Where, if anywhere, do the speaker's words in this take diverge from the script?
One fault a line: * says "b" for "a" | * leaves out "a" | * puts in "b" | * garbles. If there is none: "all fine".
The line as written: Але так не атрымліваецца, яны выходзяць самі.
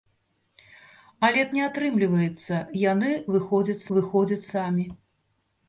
* leaves out "так"
* puts in "выходзяць"